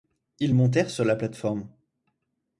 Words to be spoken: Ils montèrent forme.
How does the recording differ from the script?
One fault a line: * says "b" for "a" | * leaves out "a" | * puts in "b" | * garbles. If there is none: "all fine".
* puts in "sur la plate"